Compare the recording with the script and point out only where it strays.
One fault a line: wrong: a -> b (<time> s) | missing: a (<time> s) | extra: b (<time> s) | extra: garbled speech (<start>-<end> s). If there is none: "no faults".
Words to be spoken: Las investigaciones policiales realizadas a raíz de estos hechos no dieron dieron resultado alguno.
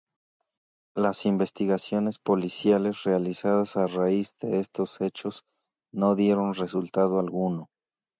missing: dieron (6.5 s)